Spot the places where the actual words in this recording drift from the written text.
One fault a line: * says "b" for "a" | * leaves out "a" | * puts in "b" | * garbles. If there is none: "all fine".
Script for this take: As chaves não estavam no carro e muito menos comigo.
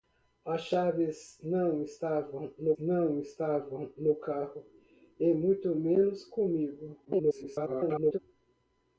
* puts in "não estavam no"
* garbles